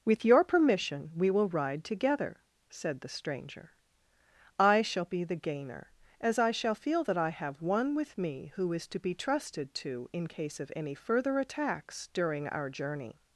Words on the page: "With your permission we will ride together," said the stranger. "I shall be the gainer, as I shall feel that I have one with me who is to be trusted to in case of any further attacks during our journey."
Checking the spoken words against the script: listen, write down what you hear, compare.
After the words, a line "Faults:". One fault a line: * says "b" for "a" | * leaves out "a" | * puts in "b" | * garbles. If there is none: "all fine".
"With your permission we will ride together," said the stranger. "I shall be the gainer, as I shall feel that I have one with me who is to be trusted to in case of any further attacks during our journey."
Faults:
all fine